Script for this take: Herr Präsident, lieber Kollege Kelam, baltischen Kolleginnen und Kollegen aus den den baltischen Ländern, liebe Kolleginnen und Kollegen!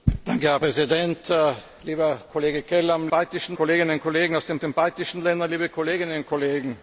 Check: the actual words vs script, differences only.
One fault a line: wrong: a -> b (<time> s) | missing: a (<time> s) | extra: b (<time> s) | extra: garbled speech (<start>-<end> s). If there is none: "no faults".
no faults